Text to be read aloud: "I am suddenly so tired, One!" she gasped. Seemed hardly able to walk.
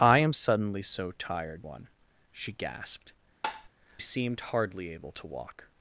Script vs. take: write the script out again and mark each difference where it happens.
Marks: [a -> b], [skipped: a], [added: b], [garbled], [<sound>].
"I am suddenly so tired, One!" she gasped. [tap] Seemed hardly able to walk.